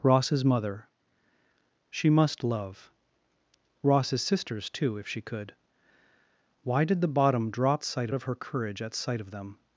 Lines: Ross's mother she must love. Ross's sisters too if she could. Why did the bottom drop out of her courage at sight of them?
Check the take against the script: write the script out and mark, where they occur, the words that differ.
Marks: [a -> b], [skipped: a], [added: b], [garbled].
Ross's mother she must love. Ross's sisters too if she could. Why did the bottom drop [out -> sight] of her courage at sight of them?